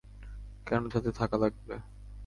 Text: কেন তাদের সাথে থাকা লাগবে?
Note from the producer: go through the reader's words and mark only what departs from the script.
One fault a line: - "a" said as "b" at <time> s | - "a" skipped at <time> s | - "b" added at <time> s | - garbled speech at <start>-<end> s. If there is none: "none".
- "তাদের" skipped at 0.8 s